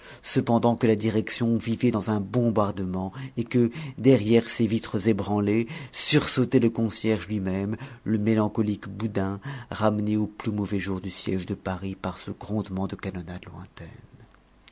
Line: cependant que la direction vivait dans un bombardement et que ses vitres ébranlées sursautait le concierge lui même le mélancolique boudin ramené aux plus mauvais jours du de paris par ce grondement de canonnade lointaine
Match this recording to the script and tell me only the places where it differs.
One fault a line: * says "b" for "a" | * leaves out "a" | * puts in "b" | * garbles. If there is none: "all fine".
* puts in "derrière"
* puts in "siège"